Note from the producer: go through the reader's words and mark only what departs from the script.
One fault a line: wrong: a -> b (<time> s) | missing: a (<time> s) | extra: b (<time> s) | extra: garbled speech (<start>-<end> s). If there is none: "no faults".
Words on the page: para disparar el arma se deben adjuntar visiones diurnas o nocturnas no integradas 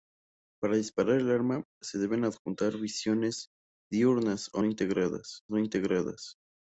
wrong: nocturnas -> integradas (4.6 s)